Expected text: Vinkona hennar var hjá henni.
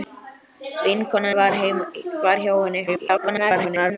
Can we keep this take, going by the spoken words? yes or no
no